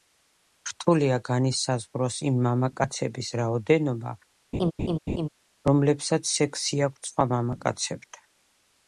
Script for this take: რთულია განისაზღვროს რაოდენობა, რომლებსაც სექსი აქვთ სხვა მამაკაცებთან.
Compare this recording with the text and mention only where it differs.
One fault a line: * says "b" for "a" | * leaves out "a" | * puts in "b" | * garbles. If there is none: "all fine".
* puts in "იმ მამაკაცების"